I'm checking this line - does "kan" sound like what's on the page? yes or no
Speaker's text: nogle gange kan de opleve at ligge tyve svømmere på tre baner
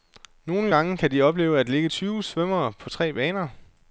yes